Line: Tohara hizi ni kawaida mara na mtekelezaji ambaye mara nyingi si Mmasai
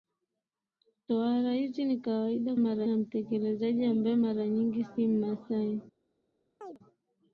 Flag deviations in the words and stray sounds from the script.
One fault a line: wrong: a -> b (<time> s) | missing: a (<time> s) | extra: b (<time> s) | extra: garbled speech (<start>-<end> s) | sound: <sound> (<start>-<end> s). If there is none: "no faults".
sound: chirp (6.6-6.8 s)